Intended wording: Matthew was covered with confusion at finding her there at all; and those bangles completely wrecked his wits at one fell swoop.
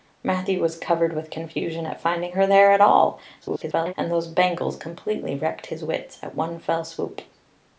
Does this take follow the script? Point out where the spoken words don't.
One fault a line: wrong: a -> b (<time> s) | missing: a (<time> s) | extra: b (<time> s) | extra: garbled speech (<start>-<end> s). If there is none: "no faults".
extra: garbled speech (3.4-3.9 s)